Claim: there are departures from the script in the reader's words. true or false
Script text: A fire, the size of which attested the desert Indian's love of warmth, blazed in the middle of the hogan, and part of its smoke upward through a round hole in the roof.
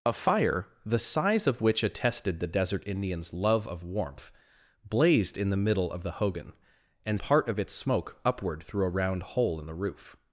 false